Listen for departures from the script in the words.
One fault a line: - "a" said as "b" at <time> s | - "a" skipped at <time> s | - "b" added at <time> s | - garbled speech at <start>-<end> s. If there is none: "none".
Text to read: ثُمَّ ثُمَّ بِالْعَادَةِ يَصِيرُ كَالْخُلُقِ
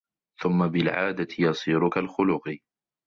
- "ثُمَّ" skipped at 0.7 s